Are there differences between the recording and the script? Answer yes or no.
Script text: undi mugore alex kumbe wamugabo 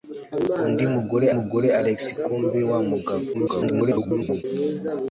yes